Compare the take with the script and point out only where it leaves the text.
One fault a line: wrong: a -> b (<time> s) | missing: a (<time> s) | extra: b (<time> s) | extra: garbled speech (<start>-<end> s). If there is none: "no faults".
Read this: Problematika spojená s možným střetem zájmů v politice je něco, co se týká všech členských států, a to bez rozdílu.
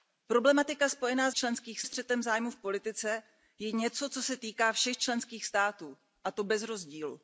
wrong: možným -> členských (1.3 s)